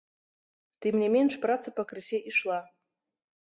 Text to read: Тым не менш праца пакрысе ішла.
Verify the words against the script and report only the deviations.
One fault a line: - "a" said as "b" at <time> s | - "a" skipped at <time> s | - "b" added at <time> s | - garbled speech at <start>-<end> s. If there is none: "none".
none